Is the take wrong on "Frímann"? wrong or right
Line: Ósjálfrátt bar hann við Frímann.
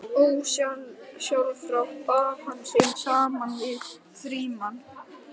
right